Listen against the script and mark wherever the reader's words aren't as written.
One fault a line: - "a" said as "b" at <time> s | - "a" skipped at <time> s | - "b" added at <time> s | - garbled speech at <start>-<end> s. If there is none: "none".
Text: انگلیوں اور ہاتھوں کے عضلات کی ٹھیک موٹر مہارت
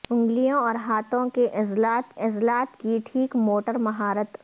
- "عضلات" added at 2.2 s